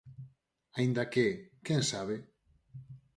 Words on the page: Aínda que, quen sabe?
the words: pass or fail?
pass